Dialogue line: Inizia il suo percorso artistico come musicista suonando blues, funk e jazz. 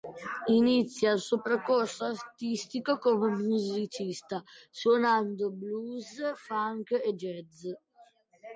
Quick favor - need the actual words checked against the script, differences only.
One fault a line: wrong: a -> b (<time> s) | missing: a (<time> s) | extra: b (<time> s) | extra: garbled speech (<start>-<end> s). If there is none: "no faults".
no faults